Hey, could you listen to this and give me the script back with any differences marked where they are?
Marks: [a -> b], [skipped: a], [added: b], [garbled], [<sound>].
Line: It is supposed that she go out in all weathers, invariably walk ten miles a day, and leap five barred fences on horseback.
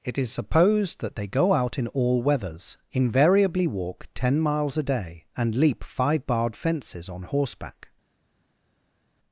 It is supposed that [she -> they] go out in all weathers, invariably walk ten miles a day, and leap five barred fences on horseback.